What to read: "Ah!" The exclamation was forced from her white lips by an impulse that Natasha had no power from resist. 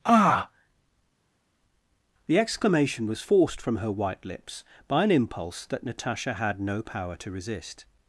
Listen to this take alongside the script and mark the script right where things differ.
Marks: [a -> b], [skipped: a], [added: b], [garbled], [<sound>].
"Ah!" The exclamation was forced from her white lips by an impulse that Natasha had no power [from -> to] resist.